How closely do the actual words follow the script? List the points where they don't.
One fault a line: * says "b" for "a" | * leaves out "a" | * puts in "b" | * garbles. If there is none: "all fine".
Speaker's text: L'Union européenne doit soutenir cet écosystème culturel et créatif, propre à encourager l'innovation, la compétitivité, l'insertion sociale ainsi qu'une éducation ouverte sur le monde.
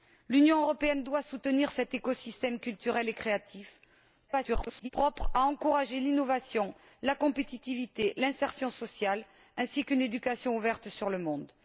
* garbles